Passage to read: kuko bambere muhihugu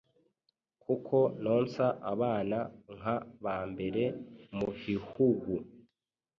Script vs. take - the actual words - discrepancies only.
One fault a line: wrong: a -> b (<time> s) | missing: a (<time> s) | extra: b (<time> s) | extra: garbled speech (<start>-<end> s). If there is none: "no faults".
extra: nonsa abana nka (1.4 s)